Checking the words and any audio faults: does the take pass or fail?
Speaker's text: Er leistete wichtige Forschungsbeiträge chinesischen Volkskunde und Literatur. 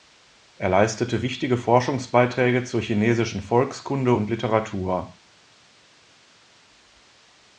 fail